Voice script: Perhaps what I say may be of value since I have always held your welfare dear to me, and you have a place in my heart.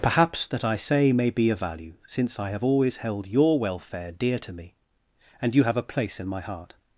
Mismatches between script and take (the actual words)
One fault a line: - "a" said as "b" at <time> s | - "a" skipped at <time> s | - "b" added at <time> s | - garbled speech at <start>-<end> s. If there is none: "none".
- "what" said as "that" at 0.5 s